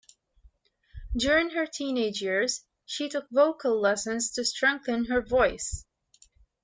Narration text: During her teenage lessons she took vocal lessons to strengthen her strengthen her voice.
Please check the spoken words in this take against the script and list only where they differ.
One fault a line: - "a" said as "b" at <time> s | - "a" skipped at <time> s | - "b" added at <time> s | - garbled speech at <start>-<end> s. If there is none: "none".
- "lessons" said as "years" at 2.2 s
- "strengthen her" skipped at 5.2 s